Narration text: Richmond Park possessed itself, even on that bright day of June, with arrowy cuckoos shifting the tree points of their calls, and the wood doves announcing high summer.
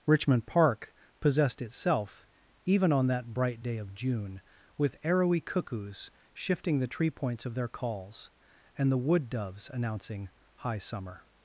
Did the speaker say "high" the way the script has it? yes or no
yes